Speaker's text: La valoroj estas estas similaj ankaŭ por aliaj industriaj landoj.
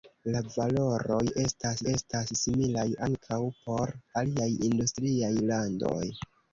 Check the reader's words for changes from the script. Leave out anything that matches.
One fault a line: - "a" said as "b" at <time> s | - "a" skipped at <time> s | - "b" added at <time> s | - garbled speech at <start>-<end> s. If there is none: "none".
none